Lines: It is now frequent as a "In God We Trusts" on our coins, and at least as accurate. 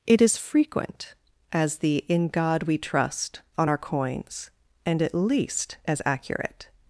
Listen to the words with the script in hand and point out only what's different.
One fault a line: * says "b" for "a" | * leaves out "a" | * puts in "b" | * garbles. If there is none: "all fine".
* leaves out "now"
* says "the" for "a"
* says "Trust" for "Trusts"